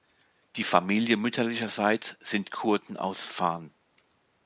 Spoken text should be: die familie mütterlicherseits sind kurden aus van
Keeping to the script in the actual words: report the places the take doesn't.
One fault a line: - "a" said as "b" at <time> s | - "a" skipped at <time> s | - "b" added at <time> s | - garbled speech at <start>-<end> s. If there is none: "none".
none